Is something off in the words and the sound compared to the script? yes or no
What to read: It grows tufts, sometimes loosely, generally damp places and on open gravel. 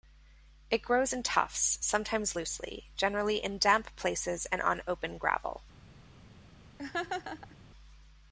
yes